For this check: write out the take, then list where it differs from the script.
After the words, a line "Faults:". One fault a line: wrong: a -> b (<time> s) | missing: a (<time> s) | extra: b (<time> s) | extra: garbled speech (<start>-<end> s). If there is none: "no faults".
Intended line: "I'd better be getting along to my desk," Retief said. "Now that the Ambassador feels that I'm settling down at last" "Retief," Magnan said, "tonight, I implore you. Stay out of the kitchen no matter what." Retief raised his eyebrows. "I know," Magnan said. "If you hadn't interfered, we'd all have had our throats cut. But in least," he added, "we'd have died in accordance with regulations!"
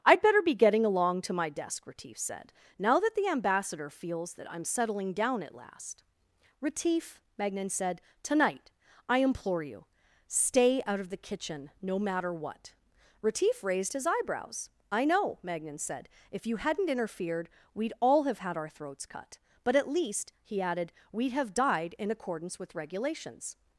"I'd better be getting along to my desk," Retief said. "Now that the Ambassador feels that I'm settling down at last" "Retief," Magnan said, "tonight, I implore you. Stay out of the kitchen no matter what." Retief raised his eyebrows. "I know," Magnan said. "If you hadn't interfered, we'd all have had our throats cut. But at least," he added, "we'd have died in accordance with regulations!"
Faults:
wrong: in -> at (19.8 s)